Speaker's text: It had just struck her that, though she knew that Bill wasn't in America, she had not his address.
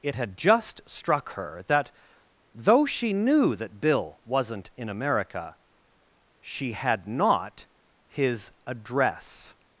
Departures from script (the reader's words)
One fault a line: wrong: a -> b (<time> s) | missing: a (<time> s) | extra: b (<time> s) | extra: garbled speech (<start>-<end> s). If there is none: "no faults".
no faults